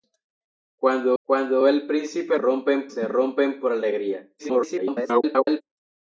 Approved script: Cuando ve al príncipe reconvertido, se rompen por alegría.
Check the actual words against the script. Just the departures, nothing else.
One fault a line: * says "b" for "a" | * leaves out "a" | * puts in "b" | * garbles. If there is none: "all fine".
* puts in "cuando"
* says "rompen" for "reconvertido"
* garbles